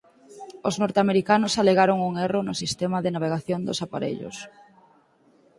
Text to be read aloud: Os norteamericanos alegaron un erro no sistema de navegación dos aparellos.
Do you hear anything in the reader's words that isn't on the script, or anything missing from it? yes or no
no